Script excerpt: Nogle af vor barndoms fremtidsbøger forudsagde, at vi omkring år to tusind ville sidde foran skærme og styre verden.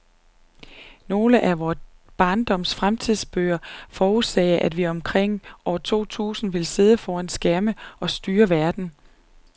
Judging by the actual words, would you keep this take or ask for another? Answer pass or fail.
pass